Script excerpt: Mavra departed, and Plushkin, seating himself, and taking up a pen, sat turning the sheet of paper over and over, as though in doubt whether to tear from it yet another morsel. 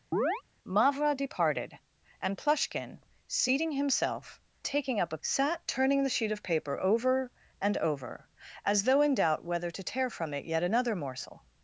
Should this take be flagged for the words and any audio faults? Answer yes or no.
yes